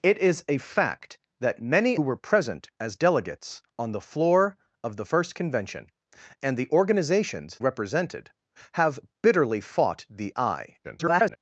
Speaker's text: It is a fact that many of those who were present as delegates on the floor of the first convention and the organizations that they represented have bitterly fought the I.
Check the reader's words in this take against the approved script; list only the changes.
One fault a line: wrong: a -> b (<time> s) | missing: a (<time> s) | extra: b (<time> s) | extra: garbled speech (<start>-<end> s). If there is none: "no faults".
missing: of those who (2.0 s)
missing: that they (7.6 s)
extra: garbled speech (10.8-11.4 s)